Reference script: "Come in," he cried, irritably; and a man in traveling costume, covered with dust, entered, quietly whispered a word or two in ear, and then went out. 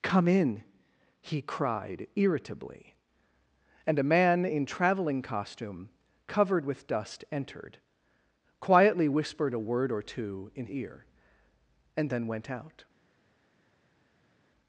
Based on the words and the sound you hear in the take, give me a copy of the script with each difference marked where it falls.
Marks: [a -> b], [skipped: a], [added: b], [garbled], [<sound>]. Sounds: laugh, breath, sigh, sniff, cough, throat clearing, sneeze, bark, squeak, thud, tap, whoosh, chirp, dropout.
"Come in," he cried, irritably; and a man in traveling costume, covered with dust, entered, quietly whispered a word or two in ear, and then went out.